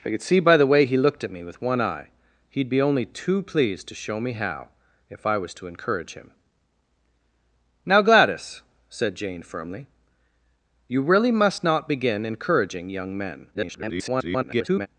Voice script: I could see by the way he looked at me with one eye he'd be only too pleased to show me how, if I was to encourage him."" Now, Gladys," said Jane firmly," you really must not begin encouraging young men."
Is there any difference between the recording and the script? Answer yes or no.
yes